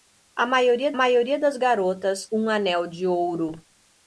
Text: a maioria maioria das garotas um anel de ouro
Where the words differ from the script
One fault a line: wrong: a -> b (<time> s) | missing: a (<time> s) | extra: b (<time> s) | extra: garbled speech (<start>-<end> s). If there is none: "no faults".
no faults